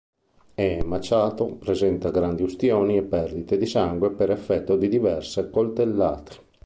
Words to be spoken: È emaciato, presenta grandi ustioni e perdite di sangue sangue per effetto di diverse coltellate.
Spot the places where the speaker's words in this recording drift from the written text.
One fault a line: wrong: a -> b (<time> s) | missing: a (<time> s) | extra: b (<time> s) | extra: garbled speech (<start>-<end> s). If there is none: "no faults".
missing: sangue (4.1 s)